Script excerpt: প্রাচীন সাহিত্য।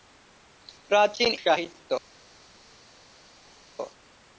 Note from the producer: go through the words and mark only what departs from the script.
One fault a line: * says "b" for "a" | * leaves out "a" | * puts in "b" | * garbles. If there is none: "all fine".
all fine